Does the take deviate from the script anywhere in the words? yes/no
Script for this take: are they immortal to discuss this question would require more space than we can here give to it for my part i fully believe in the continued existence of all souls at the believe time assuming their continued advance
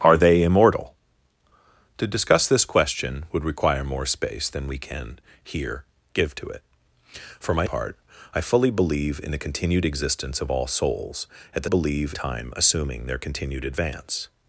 no